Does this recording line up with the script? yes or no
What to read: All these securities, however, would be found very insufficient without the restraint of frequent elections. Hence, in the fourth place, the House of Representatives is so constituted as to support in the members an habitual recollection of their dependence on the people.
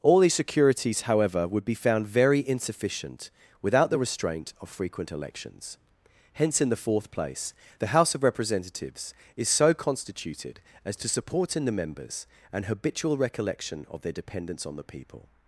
yes